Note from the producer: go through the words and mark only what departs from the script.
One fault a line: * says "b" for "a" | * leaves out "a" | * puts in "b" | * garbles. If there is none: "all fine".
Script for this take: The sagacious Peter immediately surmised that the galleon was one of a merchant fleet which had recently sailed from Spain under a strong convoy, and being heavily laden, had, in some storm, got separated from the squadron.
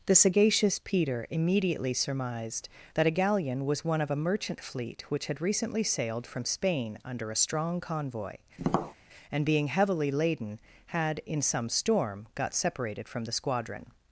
* says "a" for "the"